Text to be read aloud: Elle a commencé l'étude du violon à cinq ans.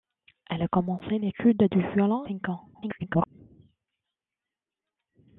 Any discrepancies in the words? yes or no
yes